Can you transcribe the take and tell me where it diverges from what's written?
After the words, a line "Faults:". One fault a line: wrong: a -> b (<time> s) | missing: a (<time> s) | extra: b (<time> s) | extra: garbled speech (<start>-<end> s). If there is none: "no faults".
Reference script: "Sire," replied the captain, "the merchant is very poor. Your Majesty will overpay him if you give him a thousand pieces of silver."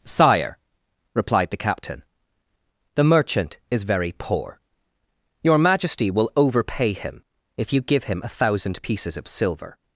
"Sire," replied the captain, "the merchant is very poor. Your Majesty will overpay him if you give him a thousand pieces of silver."
Faults:
no faults